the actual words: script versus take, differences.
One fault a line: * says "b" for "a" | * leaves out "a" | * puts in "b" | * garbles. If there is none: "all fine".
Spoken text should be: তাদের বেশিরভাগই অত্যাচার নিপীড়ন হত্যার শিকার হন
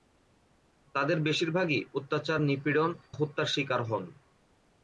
all fine